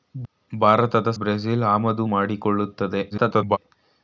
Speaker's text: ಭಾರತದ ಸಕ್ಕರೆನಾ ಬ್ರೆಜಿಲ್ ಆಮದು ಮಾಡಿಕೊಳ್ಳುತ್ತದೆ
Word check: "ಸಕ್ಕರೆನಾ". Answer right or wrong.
wrong